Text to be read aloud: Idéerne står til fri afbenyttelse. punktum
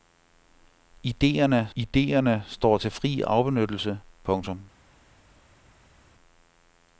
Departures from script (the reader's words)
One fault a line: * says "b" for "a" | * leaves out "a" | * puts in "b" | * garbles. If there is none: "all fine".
* puts in "idéerne"